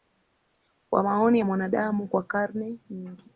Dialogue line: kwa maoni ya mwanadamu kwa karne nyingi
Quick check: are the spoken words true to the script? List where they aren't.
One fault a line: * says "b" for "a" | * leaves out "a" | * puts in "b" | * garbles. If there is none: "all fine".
all fine